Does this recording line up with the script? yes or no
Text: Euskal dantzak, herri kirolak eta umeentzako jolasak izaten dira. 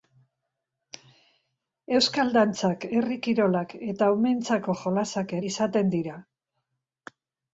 yes